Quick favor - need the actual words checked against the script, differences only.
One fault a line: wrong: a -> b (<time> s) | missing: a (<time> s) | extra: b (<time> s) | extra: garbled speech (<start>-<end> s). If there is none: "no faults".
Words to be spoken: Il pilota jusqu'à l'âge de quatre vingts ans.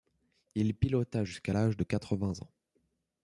no faults